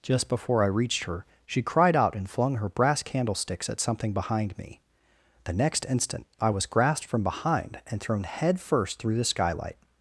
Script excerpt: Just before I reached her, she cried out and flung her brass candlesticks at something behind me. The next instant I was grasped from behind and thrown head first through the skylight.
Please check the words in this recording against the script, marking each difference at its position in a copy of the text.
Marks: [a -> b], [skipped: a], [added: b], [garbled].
Just before I reached her, she cried out and flung her brass candlesticks at something behind me. The next instant I was grasped from behind and thrown head first through the skylight.